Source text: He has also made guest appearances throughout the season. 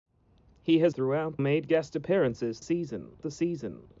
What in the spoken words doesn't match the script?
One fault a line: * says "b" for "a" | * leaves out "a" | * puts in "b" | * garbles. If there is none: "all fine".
* says "throughout" for "also"
* says "season" for "throughout"